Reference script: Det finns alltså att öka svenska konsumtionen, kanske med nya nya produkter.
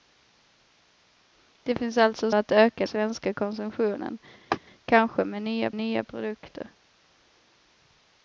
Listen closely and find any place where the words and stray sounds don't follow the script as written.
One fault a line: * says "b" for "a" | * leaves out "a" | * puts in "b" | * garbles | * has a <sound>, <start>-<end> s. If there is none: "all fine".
* has a laugh, 4.5-4.6 s